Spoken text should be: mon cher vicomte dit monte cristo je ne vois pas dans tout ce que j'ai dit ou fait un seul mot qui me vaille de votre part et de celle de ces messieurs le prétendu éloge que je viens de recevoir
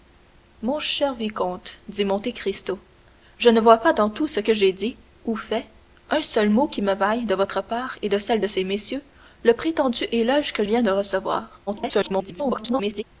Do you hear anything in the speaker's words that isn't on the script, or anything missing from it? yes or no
yes